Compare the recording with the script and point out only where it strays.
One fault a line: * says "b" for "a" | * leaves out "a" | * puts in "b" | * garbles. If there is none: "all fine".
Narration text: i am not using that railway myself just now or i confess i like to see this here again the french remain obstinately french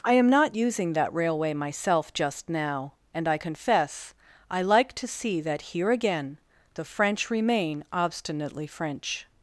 * says "and" for "or"
* says "that" for "this"